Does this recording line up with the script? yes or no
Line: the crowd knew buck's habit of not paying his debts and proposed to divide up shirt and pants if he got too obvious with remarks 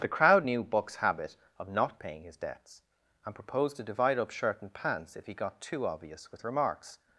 yes